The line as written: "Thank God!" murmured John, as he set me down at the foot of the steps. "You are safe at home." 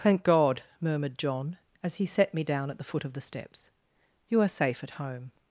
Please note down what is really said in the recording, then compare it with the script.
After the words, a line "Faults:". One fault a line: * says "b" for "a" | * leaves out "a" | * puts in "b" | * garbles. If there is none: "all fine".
"Thank God!" murmured John, as he set me down at the foot of the steps. "You are safe at home."
Faults:
all fine